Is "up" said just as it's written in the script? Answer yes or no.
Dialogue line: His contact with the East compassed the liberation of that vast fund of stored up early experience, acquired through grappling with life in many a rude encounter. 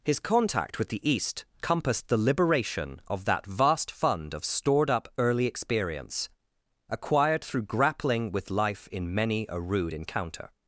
yes